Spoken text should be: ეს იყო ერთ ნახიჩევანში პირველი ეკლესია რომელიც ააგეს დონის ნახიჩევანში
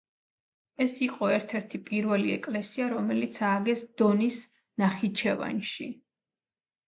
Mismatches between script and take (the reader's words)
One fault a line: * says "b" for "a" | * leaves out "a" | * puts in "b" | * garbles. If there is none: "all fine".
* says "ერთი" for "ნახიჩევანში"